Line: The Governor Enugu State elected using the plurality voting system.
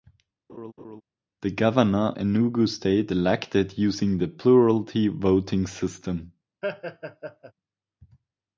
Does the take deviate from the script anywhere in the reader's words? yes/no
no